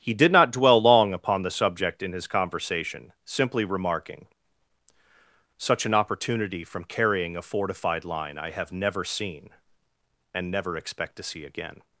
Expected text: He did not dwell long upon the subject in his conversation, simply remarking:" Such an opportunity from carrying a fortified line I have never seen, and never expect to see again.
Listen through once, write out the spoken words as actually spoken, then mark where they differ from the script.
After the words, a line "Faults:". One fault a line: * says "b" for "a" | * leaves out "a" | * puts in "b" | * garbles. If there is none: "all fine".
He did not dwell long upon the subject in his conversation, simply remarking:" Such an opportunity from carrying a fortified line I have never seen, and never expect to see again.
Faults:
all fine